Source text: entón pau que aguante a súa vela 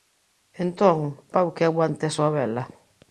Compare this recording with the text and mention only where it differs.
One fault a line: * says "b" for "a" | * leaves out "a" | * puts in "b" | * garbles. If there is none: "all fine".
all fine